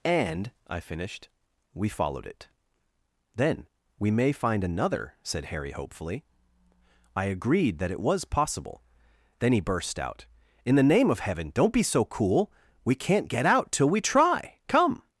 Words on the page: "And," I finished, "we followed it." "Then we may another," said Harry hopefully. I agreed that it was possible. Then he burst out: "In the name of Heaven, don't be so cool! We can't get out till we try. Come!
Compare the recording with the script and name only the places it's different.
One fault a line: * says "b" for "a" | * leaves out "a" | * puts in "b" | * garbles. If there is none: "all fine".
* puts in "find"